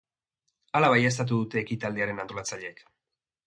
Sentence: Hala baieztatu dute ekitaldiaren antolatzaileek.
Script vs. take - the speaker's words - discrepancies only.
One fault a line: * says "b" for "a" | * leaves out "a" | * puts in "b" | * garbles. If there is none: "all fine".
all fine